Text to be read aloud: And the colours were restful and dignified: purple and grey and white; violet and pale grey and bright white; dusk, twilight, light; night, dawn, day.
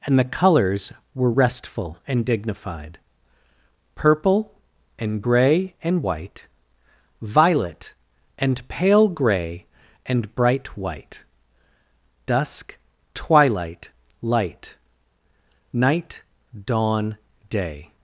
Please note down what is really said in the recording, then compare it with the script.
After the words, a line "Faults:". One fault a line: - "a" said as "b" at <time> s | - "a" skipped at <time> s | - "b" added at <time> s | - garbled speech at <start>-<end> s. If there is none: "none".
And the colours were restful and dignified: purple and grey and white; violet and pale grey and bright white; dusk, twilight, light; night, dawn, day.
Faults:
none